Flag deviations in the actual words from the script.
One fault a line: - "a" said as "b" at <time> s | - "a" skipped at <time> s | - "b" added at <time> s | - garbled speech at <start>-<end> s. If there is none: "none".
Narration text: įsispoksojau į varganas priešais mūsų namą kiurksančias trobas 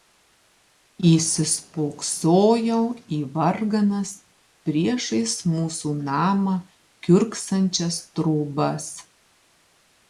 none